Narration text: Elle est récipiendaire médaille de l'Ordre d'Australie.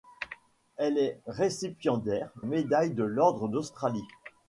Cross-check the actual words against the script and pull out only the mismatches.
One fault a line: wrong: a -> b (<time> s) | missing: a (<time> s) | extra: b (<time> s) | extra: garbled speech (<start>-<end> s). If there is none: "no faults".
no faults